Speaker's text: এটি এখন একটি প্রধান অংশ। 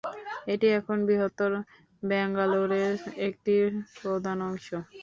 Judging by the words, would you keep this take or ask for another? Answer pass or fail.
fail